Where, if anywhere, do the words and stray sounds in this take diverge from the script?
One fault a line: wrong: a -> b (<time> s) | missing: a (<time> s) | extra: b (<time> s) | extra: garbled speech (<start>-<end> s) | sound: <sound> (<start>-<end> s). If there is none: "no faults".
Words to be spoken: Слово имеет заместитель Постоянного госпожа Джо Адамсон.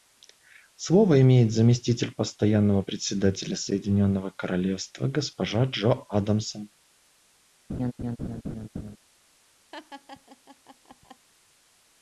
extra: представителя Соединенного Королевства (2.8 s)
sound: laugh (7.7-9.0 s)
sound: laugh (9.7-11.3 s)